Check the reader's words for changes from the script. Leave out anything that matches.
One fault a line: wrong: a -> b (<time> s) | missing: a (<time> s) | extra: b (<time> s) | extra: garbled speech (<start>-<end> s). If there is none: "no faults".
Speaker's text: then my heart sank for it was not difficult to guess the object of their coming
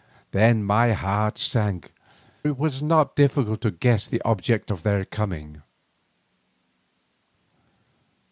missing: for (1.9 s)